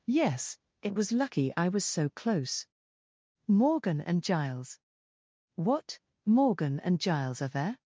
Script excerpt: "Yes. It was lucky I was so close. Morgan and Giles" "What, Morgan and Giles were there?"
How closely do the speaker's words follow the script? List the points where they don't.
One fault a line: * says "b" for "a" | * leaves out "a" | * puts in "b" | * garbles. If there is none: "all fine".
* says "are" for "were"